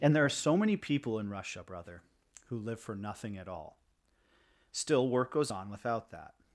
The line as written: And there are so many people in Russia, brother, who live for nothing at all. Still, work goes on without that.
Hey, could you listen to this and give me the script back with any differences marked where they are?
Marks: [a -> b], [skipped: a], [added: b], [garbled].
And there are so many people in Russia, brother, who live for nothing at all. Still, work goes on without that.